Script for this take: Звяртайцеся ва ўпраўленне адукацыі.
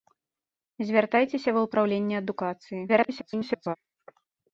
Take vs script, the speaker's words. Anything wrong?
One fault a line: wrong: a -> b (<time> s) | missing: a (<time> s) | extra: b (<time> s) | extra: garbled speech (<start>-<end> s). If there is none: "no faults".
extra: garbled speech (2.9-3.8 s)